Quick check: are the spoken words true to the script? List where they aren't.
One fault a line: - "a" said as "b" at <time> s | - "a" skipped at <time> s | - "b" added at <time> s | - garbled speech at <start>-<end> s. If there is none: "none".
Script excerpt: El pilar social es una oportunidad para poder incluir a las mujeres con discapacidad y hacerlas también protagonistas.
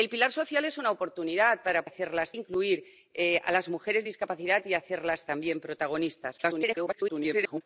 - "poder" said as "hacerlas" at 1.8 s
- garbled speech at 6.4-7.6 s